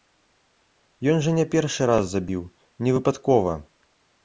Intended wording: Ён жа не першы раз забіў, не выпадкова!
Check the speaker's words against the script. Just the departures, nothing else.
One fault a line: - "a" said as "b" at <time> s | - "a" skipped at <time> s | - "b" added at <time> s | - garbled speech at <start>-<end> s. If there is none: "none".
none